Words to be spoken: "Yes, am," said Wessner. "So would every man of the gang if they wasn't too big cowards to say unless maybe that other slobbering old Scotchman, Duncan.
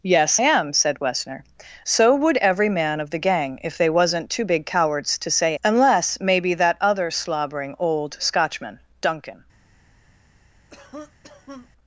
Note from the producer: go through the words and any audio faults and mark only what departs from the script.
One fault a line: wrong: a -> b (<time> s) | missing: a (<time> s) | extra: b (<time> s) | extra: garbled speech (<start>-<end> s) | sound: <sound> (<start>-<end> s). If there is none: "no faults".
sound: cough (10.7-11.7 s)